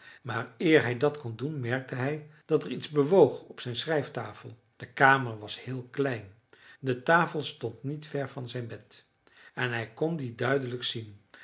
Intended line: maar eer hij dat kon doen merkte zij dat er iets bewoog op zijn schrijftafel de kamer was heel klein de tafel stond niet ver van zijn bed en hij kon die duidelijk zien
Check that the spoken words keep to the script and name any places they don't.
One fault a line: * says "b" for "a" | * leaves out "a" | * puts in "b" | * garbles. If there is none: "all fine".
* says "hij" for "zij"